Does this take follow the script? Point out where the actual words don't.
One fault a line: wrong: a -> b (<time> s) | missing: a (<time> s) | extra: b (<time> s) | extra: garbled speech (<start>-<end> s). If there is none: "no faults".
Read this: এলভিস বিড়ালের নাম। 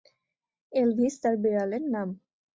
extra: তার (1.2 s)